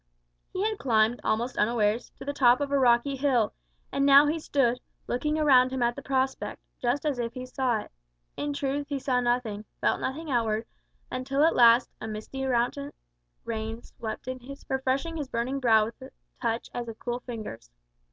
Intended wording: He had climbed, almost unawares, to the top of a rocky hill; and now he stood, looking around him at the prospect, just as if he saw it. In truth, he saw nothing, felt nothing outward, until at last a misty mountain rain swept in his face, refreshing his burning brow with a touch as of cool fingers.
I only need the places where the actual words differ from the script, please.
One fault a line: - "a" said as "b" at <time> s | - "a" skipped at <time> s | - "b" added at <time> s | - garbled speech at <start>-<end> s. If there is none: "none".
- "face" skipped at 14.6 s